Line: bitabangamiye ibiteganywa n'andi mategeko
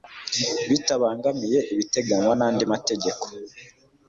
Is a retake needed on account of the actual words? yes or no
no